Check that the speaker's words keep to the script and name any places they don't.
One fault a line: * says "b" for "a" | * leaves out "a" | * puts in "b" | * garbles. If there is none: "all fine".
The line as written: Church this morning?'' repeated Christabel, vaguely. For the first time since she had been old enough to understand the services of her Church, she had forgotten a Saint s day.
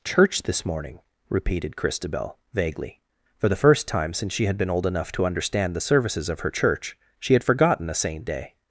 * leaves out "s"